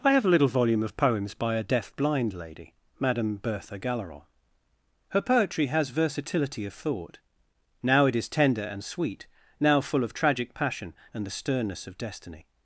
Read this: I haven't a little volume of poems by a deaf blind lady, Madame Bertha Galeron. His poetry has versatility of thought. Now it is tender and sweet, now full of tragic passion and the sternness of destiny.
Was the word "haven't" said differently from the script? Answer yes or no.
yes